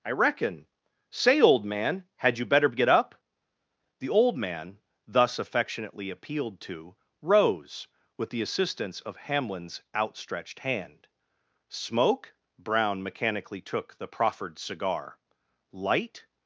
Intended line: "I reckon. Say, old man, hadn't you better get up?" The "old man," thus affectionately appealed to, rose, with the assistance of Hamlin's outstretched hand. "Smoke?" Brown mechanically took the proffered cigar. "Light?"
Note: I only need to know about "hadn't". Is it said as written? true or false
false